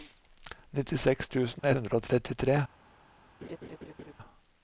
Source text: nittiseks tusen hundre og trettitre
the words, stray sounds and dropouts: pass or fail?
fail